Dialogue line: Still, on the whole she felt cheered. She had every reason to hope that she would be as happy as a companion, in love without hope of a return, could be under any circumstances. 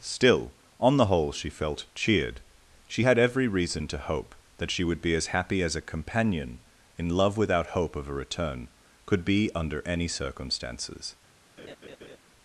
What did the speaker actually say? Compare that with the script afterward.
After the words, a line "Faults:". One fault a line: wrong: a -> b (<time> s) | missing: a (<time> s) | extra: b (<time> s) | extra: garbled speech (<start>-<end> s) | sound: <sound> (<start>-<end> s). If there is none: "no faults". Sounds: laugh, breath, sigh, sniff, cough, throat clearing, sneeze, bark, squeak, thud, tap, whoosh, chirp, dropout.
Still, on the whole she felt cheered. She had every reason to hope that she would be as happy as a companion, in love without hope of a return, could be under any circumstances.
Faults:
sound: laugh (11.6-12.2 s)